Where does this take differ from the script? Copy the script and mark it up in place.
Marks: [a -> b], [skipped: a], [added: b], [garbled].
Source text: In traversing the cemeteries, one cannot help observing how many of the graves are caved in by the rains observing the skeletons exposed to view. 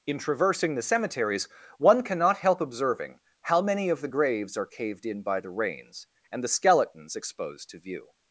In traversing the cemeteries, one cannot help observing how many of the graves are caved in by the rains [observing -> and] the skeletons exposed to view.